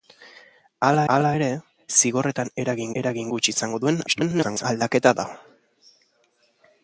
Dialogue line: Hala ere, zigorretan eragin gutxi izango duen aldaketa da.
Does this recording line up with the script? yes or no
no